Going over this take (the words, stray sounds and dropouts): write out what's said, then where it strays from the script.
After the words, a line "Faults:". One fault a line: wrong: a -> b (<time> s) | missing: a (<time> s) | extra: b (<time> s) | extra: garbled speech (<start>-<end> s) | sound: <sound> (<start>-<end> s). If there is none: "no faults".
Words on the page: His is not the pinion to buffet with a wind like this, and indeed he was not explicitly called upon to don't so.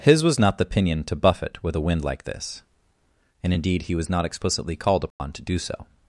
His was not the pinion to buffet with a wind like this, and indeed he was not explicitly called upon to do so.
Faults:
wrong: is -> was (0.2 s)
sound: dropout (5.1-5.2 s)
wrong: don't -> do (5.4 s)